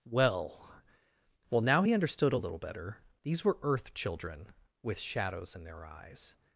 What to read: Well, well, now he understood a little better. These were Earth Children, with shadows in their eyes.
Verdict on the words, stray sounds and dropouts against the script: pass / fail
pass